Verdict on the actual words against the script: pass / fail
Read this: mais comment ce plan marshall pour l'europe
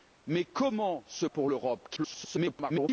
fail